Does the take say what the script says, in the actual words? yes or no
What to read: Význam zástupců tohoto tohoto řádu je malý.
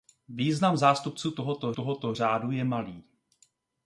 yes